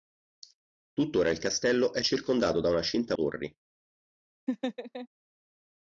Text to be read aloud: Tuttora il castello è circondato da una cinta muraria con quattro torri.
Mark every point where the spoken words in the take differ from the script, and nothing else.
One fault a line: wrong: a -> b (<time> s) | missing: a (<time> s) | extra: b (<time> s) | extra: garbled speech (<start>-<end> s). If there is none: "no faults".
missing: muraria con quattro (3.2 s)